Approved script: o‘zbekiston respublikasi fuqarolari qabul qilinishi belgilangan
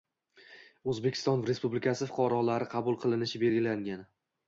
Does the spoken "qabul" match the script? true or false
true